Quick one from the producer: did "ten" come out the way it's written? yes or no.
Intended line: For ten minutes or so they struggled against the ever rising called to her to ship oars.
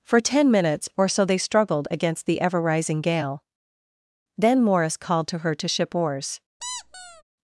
yes